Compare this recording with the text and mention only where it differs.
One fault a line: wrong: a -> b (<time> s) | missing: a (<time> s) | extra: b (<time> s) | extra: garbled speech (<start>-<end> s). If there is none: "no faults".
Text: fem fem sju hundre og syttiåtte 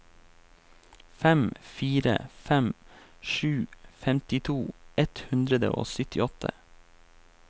extra: fire (1.7 s)
extra: femtito ett (4.0 s)